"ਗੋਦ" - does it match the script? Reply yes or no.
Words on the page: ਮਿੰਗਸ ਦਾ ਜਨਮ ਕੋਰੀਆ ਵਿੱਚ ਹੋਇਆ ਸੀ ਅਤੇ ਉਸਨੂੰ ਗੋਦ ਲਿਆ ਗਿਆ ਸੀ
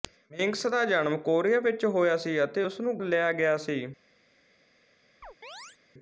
no